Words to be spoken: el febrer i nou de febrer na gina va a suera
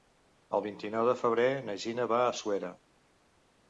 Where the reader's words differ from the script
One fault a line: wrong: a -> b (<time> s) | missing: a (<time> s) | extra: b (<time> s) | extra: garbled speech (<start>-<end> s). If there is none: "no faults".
wrong: febrer -> vint (0.7 s)